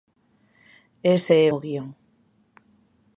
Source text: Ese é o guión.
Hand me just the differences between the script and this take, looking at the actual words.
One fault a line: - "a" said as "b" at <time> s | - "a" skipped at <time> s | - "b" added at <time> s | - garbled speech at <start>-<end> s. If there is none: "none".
none